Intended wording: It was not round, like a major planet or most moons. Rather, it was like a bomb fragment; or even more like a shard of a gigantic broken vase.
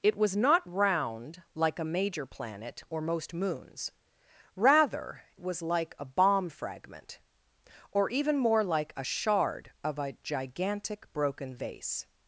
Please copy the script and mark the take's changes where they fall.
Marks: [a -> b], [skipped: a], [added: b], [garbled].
It was not round, like a major planet or most moons. Rather, [skipped: it] was like a bomb fragment; or even more like a shard of a gigantic broken vase.